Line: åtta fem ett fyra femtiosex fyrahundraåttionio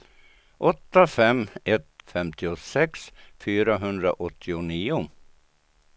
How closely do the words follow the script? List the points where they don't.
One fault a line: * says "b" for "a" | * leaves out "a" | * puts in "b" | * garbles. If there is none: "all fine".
* leaves out "fyra"